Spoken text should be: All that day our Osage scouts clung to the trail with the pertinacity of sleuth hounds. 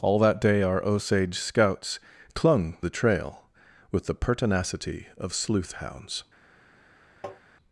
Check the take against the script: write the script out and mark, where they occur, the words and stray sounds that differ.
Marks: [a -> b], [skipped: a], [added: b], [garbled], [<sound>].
All that day our Osage scouts clung [skipped: to] the trail with the pertinacity of sleuth hounds. [tap]